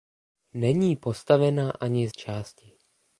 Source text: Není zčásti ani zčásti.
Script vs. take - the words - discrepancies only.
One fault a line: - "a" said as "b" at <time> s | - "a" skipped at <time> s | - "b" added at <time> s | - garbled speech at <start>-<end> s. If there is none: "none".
- "zčásti" said as "postavena" at 0.9 s